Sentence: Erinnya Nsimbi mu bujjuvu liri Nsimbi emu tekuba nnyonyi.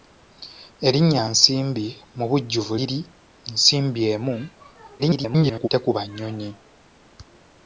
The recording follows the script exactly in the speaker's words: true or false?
false